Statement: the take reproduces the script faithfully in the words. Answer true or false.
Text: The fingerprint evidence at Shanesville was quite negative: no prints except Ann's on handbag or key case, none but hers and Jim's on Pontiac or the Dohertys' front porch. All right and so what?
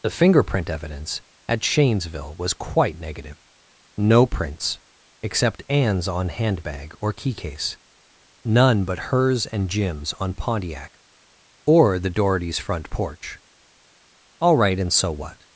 true